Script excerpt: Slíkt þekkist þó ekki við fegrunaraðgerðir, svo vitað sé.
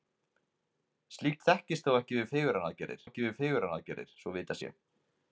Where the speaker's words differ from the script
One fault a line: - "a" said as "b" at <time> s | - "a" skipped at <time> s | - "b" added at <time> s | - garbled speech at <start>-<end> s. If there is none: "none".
- "ekki við fegrunaraðgerðir" added at 3.1 s